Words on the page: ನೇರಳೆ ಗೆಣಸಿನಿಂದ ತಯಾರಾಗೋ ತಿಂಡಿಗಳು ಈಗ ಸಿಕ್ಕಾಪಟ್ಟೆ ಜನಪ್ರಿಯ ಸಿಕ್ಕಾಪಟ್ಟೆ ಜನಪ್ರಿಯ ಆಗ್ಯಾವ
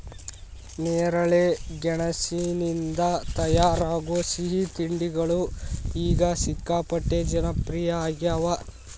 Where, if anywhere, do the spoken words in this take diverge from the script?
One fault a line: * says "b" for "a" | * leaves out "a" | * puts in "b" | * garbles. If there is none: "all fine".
* puts in "ಸಿಹಿ"
* leaves out "ಸಿಕ್ಕಾಪಟ್ಟೆ ಜನಪ್ರಿಯ"